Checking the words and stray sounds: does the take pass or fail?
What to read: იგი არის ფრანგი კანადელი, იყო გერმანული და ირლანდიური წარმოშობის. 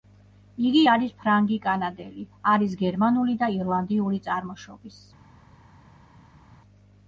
fail